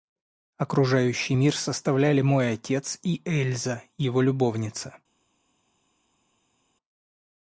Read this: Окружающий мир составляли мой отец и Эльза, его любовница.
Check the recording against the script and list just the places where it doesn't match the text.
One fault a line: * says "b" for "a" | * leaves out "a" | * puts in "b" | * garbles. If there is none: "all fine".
all fine